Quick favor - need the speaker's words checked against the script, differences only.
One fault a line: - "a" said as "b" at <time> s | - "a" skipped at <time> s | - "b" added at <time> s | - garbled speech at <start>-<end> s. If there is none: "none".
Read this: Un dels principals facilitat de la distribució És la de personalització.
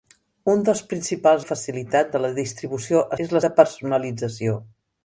none